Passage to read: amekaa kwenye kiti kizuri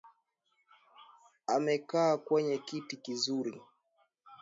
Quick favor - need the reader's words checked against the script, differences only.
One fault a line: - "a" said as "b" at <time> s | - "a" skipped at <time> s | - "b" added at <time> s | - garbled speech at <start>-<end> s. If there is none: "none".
none